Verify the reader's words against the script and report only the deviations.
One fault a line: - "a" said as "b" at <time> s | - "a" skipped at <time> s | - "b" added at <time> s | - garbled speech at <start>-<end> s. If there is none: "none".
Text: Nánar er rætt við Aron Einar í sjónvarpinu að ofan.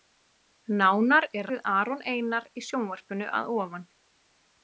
- "rætt" skipped at 1.5 s